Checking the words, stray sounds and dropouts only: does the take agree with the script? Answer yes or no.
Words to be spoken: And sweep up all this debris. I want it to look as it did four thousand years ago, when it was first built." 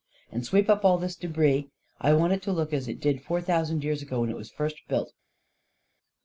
yes